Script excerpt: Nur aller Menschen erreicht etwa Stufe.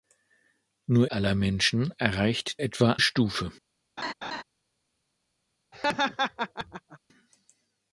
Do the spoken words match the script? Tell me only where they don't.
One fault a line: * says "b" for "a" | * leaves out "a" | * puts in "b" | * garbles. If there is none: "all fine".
all fine